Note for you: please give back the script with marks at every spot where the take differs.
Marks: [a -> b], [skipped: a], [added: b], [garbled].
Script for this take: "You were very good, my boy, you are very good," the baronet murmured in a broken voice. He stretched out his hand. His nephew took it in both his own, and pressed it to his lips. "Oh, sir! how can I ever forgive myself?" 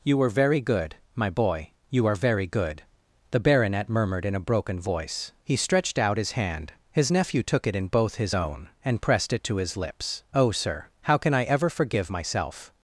"You were very good, my boy, you are very good," the baronet murmured in a broken voice. He stretched out his hand. His nephew took it in both his own, and pressed it to his lips. "Oh, sir! how can I ever forgive myself?"